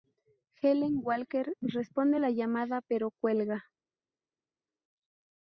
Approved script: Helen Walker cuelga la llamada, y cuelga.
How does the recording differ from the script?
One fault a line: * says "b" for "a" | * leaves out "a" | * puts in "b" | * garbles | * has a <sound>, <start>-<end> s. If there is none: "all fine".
* says "responde" for "cuelga"
* says "pero" for "y"